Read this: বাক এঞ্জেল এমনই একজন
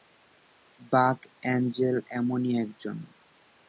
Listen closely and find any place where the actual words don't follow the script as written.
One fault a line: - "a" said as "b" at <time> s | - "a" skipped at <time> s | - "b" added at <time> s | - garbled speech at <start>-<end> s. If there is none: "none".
none